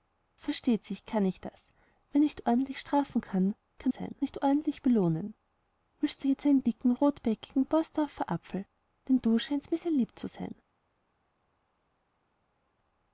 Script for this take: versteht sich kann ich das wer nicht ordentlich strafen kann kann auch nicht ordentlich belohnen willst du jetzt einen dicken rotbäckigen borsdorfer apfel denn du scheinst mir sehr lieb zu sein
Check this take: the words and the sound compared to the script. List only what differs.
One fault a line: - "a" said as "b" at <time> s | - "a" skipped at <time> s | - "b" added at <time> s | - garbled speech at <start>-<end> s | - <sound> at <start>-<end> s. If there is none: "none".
- "auch" said as "sein" at 3.9 s